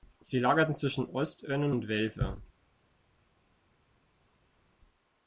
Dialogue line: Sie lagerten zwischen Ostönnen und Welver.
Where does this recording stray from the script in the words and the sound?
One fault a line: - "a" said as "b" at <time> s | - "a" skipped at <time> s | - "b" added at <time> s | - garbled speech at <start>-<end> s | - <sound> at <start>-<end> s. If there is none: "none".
none